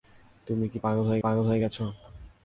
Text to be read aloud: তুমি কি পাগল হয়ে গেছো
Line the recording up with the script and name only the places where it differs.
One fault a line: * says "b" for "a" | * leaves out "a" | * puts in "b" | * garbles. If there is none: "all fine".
* puts in "পাগল হয়ে"